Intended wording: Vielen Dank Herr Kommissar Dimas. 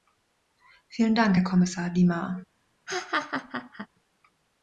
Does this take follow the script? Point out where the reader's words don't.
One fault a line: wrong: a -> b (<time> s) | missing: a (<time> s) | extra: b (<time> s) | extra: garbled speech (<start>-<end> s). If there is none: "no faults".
no faults